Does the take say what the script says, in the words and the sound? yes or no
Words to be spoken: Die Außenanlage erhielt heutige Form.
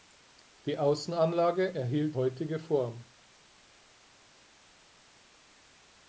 yes